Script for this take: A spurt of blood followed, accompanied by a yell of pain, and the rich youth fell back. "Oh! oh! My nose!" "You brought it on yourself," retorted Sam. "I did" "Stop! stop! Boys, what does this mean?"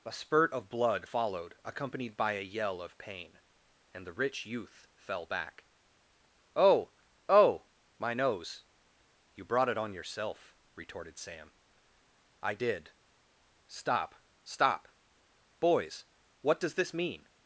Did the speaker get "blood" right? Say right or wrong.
right